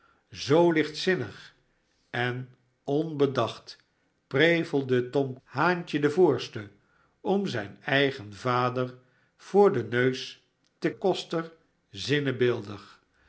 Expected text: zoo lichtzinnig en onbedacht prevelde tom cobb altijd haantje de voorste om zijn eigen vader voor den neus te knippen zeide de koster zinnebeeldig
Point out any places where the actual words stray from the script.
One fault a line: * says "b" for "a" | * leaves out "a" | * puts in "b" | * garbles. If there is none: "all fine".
* leaves out "cobb altijd"
* leaves out "knippen zeide de"